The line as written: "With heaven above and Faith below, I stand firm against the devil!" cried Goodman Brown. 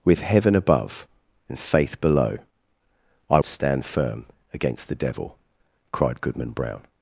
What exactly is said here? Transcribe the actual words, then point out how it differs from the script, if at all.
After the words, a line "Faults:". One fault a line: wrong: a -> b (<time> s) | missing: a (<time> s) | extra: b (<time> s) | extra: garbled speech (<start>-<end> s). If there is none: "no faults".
"With heaven above and Faith below, I stand firm against the devil!" cried Goodman Brown.
Faults:
no faults